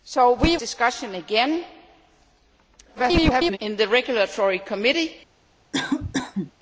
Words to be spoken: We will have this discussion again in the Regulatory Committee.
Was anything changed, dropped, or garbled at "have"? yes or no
yes